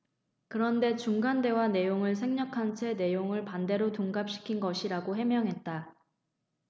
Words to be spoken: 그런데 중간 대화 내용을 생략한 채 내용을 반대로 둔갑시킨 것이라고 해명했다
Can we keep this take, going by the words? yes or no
yes